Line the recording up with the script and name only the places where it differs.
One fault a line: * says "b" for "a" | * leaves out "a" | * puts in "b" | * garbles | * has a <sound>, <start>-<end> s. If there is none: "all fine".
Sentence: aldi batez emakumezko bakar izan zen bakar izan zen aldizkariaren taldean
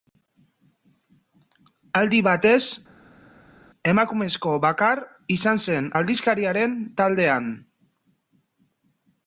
* leaves out "bakar izan zen"